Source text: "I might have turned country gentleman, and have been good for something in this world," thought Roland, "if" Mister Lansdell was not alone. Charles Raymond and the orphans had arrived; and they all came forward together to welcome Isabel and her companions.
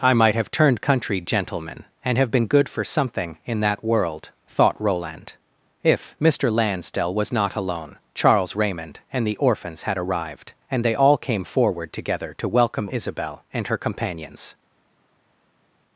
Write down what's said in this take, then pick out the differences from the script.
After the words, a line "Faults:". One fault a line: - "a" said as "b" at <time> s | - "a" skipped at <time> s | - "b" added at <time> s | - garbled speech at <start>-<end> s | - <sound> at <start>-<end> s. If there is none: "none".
"I might have turned country gentleman, and have been good for something in that world," thought Roland, "if" Mister Lansdell was not alone. Charles Raymond and the orphans had arrived; and they all came forward together to welcome Isabel and her companions.
Faults:
- "this" said as "that" at 3.6 s